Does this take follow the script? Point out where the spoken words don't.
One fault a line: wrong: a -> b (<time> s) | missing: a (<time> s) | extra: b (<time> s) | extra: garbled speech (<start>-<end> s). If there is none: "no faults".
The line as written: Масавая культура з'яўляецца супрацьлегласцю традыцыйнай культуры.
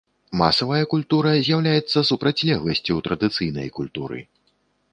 no faults